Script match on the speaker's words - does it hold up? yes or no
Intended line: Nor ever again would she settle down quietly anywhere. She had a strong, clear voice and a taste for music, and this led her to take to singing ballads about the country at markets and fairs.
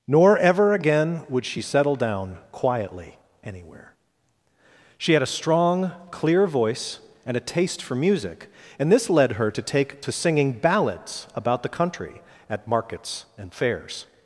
yes